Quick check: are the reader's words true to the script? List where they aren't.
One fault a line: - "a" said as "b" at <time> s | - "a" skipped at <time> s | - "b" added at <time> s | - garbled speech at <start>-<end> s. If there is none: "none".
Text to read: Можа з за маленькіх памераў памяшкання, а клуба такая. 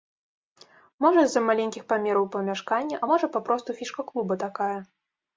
- "можа папросту фішка" added at 3.1 s